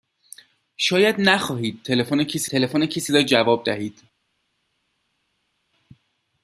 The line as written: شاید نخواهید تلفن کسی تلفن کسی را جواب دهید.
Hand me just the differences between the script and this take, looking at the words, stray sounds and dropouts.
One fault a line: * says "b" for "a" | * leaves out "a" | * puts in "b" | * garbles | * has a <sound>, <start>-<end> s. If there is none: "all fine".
all fine